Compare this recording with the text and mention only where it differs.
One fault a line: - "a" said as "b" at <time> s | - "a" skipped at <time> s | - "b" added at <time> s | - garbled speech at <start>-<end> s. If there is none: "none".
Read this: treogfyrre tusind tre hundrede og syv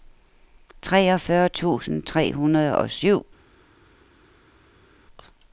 none